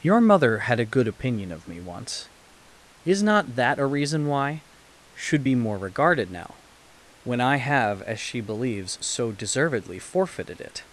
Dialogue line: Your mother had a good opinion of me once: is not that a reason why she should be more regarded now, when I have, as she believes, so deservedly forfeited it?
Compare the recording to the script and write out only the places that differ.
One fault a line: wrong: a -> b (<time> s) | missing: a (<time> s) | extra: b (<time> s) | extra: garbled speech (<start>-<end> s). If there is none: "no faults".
missing: she (4.6 s)